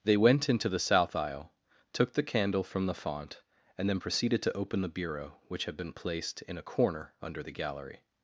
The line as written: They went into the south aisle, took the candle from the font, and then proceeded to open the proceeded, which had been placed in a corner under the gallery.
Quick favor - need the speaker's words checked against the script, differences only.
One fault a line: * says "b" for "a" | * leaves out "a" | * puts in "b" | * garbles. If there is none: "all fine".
* says "bureau" for "proceeded"